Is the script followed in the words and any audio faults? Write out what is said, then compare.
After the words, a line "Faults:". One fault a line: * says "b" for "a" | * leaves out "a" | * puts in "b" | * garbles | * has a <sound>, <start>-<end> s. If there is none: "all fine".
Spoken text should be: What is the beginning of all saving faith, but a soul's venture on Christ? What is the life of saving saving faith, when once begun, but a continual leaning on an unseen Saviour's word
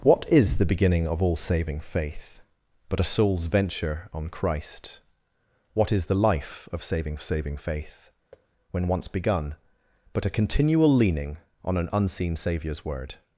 What is the beginning of all saving faith, but a soul's venture on Christ? What is the life of saving saving faith, when once begun, but a continual leaning on an unseen Saviour's word
Faults:
* has a thud, 8.3-8.5 s